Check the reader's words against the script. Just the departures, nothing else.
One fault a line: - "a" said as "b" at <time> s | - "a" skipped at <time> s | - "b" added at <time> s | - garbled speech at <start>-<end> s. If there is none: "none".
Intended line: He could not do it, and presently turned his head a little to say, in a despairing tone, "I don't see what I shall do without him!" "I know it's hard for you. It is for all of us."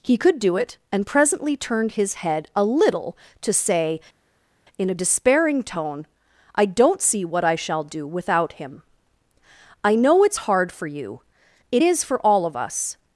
- "not" skipped at 0.4 s